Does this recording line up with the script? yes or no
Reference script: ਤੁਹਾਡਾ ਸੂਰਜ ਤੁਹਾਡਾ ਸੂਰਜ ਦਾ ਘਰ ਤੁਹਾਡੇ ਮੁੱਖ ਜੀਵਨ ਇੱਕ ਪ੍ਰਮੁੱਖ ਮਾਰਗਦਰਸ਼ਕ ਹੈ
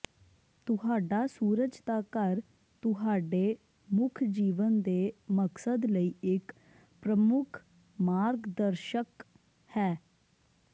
no